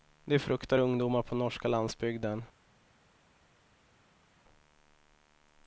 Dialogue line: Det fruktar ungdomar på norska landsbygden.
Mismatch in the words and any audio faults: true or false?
false